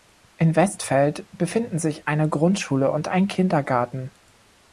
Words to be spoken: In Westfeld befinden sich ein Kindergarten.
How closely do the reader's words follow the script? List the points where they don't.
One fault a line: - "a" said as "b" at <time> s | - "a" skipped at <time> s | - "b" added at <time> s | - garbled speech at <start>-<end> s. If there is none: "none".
- "eine Grundschule und" added at 2.1 s